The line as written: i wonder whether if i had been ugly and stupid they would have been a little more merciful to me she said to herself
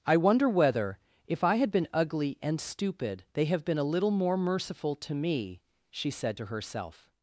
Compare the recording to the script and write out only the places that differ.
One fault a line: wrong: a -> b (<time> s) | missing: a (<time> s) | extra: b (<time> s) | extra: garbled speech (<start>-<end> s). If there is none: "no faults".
missing: would (3.5 s)